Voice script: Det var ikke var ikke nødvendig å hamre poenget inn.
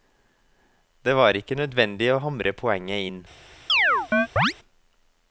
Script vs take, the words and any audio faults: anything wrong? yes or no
yes